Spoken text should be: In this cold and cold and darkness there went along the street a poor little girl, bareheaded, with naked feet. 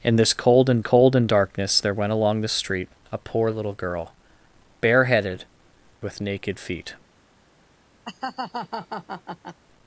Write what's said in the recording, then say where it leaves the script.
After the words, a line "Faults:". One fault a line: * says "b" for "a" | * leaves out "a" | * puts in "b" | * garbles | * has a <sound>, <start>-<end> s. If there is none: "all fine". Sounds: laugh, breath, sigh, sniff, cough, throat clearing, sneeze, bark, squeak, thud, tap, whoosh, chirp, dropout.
In this cold and cold and darkness there went along the street a poor little girl, bareheaded, with naked feet.
Faults:
* has a laugh, 8.0-9.6 s